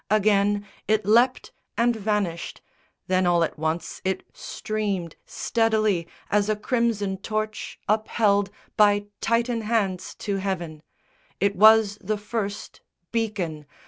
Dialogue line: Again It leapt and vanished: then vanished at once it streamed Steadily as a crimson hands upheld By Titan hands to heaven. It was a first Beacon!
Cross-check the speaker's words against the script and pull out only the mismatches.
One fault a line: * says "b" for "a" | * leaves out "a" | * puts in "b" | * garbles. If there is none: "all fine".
* says "all" for "vanished"
* says "torch" for "hands"
* says "the" for "a"